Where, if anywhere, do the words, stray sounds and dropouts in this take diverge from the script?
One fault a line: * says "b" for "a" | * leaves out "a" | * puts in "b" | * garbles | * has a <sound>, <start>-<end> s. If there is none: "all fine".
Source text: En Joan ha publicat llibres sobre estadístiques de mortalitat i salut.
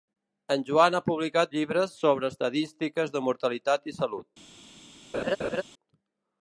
* has a laugh, 5.1-5.6 s